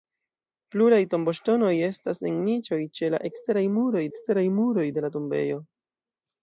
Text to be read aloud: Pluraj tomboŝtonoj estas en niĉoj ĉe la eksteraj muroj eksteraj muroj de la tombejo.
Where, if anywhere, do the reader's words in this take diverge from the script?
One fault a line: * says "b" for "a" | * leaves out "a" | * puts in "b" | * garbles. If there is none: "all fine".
all fine